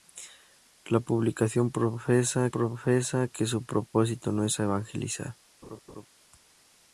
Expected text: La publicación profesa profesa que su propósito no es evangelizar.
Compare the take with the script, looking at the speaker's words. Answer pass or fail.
pass